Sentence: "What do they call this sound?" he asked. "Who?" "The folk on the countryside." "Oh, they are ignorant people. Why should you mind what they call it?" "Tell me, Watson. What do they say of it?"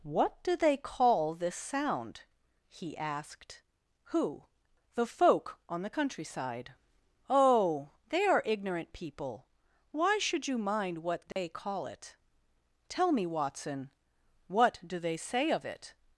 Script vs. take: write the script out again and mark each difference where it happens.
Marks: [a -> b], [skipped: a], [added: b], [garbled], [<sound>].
"What do they call this sound?" he asked. "Who?" "The folk on the countryside." "Oh, they are ignorant people. Why should you mind what they [dropout] call it?" "Tell me, Watson. What do they say of it?"